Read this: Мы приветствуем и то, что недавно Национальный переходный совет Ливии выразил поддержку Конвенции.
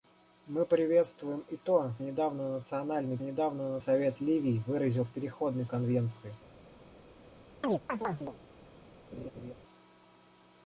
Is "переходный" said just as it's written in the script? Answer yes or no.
no